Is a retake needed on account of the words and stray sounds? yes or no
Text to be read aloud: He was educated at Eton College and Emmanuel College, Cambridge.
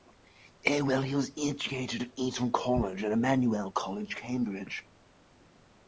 no